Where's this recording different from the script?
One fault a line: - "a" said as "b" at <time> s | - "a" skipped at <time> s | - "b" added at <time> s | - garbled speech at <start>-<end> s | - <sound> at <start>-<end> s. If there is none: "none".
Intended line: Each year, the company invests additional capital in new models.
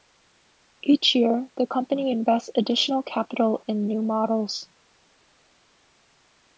none